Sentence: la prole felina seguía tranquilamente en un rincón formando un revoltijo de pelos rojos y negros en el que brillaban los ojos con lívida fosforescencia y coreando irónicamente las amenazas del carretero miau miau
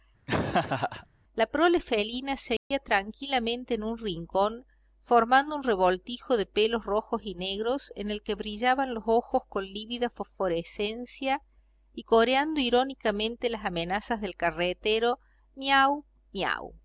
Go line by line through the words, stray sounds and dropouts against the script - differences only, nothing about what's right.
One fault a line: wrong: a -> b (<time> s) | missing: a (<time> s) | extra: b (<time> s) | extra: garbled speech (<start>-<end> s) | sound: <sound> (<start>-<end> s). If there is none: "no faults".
sound: laugh (0.3-1.1 s)
sound: dropout (2.6-2.7 s)